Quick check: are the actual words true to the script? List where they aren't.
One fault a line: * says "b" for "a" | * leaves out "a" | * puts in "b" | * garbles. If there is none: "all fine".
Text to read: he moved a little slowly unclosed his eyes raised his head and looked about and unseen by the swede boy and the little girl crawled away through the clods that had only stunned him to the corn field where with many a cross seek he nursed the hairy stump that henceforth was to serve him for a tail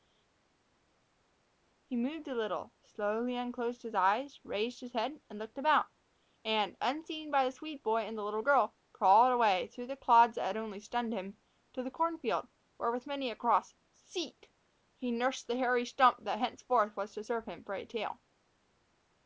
all fine